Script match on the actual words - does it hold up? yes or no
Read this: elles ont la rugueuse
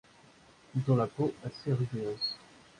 no